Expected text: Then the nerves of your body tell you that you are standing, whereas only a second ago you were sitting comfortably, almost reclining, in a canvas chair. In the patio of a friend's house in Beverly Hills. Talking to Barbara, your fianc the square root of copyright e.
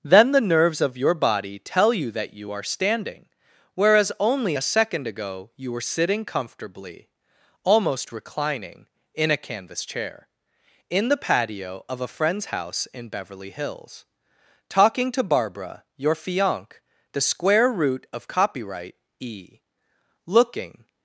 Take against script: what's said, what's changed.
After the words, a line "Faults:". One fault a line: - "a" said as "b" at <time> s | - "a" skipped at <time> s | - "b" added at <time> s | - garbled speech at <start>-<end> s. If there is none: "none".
Then the nerves of your body tell you that you are standing, whereas only a second ago you were sitting comfortably, almost reclining, in a canvas chair. In the patio of a friend's house in Beverly Hills. Talking to Barbara, your fianc the square root of copyright e. Looking
Faults:
- "Looking" added at 20.3 s